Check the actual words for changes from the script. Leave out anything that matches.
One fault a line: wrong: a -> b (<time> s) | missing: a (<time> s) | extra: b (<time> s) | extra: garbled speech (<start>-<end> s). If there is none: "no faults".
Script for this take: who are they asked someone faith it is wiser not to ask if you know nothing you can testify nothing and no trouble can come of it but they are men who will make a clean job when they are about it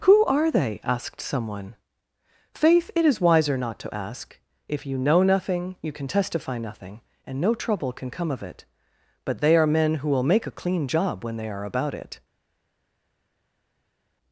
no faults